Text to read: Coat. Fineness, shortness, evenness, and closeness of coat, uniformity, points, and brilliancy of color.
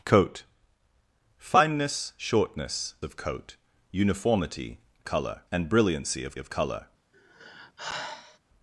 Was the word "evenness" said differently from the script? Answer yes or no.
yes